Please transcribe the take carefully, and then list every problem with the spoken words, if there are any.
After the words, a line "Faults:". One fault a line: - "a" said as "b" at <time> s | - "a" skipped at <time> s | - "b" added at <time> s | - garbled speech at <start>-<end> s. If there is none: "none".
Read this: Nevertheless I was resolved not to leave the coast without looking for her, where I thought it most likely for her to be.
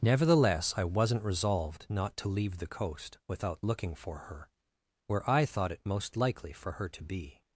Nevertheless I wasn't resolved not to leave the coast without looking for her, where I thought it most likely for her to be.
Faults:
- "was" said as "wasn't" at 0.8 s